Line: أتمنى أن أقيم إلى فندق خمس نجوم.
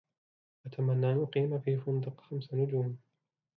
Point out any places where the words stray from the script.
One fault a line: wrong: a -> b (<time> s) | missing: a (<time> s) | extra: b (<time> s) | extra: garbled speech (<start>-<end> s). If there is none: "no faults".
wrong: إلى -> في (1.6 s)